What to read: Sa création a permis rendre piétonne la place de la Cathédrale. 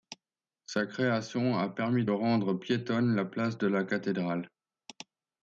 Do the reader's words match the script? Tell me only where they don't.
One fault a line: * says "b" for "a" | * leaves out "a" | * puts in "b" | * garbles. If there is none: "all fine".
all fine